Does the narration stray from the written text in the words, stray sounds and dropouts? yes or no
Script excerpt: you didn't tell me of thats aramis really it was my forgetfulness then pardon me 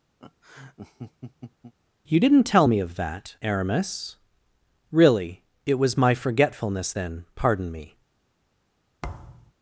yes